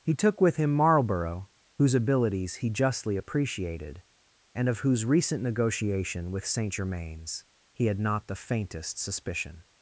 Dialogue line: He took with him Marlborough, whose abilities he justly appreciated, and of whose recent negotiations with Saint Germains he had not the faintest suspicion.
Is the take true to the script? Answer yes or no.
no